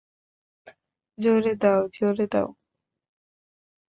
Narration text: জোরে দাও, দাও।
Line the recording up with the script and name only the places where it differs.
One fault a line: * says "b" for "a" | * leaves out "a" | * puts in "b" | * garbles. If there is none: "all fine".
* puts in "জোরে"